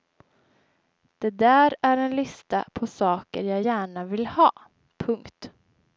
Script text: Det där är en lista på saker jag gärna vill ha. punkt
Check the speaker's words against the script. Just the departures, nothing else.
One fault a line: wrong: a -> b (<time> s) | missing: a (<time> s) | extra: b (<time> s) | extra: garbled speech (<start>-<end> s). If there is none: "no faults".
no faults